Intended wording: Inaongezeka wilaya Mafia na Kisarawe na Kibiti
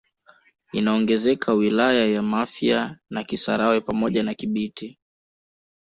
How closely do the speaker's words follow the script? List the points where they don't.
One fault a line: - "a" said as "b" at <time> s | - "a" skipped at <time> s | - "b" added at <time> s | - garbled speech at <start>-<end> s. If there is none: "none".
- "ya" added at 2.1 s
- "pamoja" added at 3.8 s